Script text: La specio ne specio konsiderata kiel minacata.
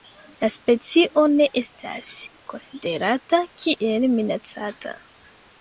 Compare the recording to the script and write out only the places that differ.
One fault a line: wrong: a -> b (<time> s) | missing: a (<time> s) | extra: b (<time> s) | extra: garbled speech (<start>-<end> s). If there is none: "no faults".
wrong: specio -> estas (1.6 s)